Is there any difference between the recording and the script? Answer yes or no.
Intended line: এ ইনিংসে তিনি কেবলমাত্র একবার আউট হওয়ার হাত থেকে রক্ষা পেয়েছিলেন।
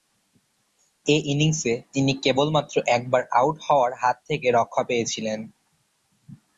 no